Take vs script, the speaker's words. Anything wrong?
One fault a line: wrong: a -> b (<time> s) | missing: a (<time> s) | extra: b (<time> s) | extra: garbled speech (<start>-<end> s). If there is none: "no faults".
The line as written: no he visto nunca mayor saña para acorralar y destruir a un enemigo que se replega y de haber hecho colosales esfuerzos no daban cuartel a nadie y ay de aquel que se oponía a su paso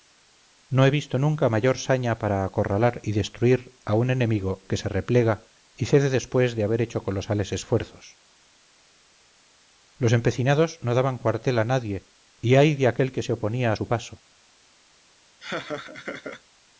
extra: cede después (5.8 s)
extra: los empecinados (10.0 s)